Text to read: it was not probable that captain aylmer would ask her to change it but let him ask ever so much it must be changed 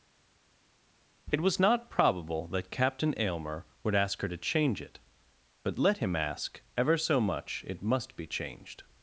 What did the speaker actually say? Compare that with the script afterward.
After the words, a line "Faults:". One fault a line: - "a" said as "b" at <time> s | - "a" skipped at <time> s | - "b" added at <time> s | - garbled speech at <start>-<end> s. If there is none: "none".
it was not probable that captain aylmer would ask her to change it but let him ask ever so much it must be changed
Faults:
none